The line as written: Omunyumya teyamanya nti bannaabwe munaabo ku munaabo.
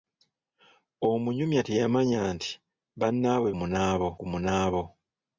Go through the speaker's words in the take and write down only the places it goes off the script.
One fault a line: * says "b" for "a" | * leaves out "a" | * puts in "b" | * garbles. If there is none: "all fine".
all fine